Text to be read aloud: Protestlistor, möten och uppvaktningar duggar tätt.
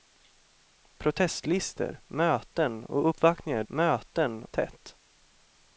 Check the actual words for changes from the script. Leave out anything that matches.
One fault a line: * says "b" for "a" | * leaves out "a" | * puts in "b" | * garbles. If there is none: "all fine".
* says "möten" for "duggar"